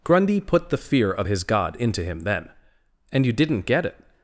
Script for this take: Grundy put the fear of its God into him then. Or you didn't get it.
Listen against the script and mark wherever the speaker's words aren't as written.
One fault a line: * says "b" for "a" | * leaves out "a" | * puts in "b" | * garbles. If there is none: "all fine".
* says "his" for "its"
* says "And" for "Or"